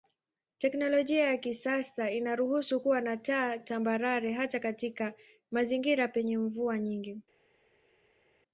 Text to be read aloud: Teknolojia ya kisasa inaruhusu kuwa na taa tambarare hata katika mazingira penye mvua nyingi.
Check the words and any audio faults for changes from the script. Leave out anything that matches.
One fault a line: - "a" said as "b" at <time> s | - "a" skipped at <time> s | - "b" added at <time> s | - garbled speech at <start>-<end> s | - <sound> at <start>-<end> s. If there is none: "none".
none